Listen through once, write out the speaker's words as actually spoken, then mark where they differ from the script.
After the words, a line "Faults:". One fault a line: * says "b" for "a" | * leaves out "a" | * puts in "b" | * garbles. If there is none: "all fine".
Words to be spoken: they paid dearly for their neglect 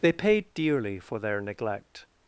they paid dearly for their neglect
Faults:
all fine